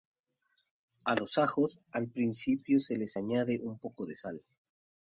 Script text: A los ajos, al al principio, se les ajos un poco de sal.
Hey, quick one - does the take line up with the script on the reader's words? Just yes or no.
no